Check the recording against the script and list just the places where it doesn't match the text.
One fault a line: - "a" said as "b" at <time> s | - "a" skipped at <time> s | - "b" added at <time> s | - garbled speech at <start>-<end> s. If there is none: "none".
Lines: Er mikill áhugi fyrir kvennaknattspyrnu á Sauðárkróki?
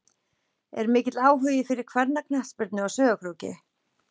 none